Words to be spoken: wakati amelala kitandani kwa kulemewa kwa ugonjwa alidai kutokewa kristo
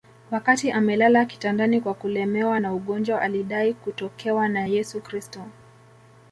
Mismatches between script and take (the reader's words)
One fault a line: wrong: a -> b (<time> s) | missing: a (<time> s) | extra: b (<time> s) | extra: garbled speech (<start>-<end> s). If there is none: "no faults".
wrong: kwa -> na (2.6 s)
extra: na yesu (4.5 s)